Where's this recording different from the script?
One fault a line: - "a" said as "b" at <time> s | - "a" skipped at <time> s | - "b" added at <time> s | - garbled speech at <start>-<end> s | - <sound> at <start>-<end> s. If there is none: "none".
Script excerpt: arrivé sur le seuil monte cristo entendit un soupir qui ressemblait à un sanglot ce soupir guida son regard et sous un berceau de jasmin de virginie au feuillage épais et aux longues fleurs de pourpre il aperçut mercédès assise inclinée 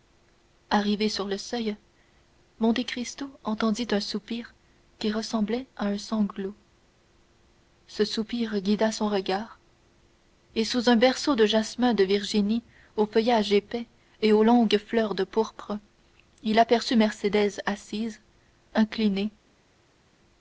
none